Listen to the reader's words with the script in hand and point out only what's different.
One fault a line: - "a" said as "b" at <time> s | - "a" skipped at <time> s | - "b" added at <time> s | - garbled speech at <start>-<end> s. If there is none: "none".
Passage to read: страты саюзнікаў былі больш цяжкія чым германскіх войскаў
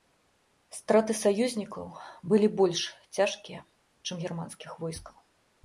none